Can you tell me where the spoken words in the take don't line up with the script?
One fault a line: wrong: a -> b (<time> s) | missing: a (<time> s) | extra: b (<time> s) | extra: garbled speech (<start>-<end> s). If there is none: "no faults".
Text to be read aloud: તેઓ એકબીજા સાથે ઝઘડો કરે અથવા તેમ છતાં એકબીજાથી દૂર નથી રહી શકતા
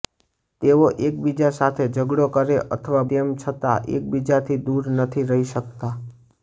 no faults